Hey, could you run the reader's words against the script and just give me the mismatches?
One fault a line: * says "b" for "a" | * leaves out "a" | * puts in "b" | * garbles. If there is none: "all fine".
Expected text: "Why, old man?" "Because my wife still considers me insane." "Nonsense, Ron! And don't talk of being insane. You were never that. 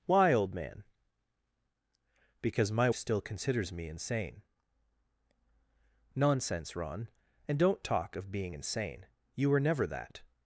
* leaves out "wife"